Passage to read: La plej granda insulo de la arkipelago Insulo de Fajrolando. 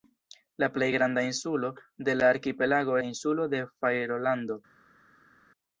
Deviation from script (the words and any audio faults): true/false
false